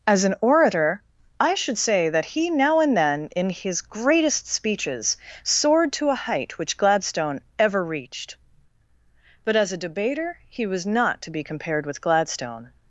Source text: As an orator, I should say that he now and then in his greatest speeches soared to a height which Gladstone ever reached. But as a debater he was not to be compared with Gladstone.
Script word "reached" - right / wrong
right